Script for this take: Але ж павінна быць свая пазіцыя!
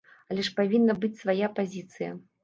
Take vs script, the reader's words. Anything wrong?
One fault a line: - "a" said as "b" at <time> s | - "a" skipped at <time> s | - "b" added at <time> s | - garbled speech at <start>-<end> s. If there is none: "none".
none